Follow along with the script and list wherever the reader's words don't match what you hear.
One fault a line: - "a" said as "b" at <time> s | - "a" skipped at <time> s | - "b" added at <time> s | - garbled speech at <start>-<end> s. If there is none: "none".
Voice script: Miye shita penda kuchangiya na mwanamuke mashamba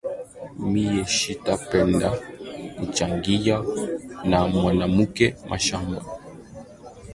none